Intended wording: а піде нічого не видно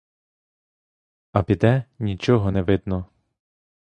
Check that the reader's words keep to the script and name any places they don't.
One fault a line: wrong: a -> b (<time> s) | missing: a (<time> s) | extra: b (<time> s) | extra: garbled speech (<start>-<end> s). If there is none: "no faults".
no faults